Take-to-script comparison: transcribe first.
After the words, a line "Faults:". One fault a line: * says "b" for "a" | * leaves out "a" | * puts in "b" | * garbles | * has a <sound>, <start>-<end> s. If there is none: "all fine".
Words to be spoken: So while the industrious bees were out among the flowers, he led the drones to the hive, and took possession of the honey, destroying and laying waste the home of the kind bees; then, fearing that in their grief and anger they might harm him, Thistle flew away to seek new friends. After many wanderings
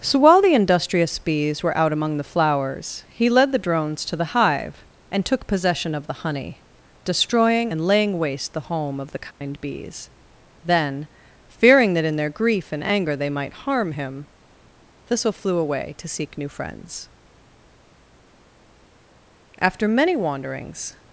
So while the industrious bees were out among the flowers, he led the drones to the hive, and took possession of the honey, destroying and laying waste the home of the kind bees; then, fearing that in their grief and anger they might harm him, Thistle flew away to seek new friends. After many wanderings
Faults:
* has a dropout, 9.3-9.4 s